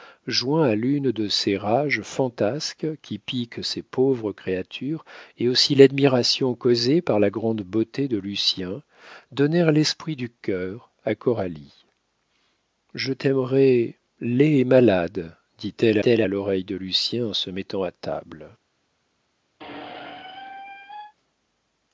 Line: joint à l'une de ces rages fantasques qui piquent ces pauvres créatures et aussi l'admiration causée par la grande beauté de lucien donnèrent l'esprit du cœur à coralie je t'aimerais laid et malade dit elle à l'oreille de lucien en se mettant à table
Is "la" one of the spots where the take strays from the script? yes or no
no